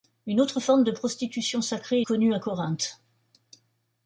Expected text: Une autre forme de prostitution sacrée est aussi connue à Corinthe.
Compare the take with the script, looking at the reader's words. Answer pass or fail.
fail